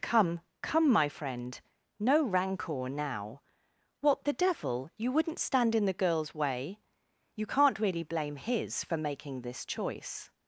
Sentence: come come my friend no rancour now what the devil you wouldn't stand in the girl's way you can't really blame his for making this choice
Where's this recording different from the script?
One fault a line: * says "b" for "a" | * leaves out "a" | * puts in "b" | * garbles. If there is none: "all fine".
all fine